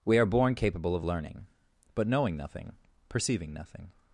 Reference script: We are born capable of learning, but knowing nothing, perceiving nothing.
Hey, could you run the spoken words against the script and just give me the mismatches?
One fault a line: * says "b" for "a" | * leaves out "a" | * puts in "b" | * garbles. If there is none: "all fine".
all fine